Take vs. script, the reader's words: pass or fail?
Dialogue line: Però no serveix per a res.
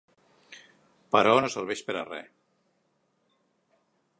pass